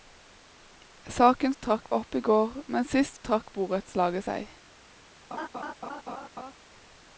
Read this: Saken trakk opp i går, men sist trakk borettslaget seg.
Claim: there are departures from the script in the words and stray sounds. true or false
true